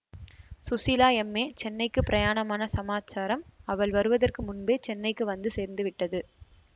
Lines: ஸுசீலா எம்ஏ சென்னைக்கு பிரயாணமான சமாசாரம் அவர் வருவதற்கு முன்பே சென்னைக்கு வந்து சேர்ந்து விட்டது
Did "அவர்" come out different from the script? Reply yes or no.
yes